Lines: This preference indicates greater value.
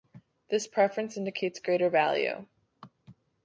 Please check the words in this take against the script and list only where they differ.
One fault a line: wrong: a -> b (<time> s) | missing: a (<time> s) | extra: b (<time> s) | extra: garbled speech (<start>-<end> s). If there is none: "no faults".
no faults